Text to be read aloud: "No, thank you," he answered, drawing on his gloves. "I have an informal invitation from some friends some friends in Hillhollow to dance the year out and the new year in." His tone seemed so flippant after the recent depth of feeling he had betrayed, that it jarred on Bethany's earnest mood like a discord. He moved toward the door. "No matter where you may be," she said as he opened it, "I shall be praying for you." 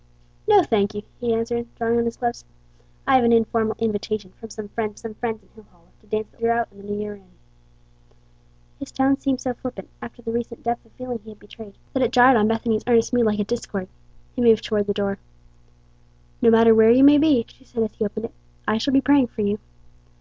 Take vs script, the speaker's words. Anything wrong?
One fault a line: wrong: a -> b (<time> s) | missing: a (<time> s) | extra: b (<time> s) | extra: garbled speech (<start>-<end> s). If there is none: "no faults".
no faults